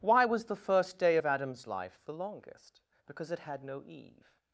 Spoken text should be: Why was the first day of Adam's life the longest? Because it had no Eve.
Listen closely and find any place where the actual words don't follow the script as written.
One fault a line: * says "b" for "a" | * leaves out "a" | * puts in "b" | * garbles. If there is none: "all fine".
all fine